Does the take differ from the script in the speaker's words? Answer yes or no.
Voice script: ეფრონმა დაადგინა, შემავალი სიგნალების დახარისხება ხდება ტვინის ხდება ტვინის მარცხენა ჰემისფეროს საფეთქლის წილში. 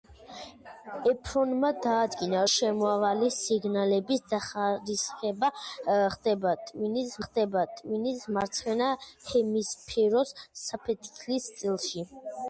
no